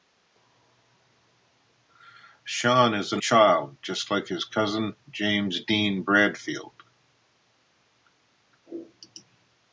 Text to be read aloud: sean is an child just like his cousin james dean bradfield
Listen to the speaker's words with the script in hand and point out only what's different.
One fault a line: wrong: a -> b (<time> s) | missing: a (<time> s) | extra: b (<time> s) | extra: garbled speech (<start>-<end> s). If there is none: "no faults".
no faults